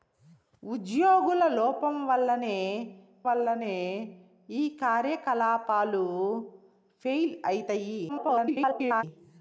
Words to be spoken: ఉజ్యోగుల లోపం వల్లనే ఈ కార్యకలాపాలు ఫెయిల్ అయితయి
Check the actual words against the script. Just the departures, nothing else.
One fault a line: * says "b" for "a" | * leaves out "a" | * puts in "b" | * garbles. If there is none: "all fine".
* puts in "వల్లనే"
* garbles